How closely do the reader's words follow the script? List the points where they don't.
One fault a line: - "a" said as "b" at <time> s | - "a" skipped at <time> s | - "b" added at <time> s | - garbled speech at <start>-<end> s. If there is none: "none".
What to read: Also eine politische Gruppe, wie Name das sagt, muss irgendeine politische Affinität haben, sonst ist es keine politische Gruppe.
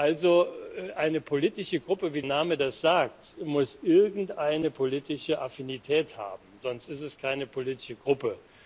none